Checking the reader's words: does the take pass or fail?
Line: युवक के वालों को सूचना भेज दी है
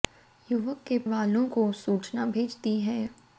pass